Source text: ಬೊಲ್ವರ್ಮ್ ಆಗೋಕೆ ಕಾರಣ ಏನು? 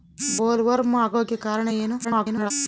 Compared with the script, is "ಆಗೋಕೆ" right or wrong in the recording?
right